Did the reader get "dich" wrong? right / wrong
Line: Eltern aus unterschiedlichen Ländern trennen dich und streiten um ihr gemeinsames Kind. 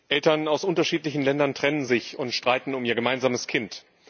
wrong